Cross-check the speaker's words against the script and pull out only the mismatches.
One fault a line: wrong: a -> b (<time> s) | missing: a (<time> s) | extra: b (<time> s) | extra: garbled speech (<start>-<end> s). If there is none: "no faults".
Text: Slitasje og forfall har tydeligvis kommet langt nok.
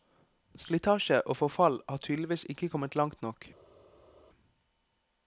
extra: ikke (2.5 s)